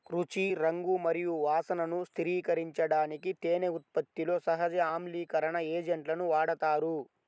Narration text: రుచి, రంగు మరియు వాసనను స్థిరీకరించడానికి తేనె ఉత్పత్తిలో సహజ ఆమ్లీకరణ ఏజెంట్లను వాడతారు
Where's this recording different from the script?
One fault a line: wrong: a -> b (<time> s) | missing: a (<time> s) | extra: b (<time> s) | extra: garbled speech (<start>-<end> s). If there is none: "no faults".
no faults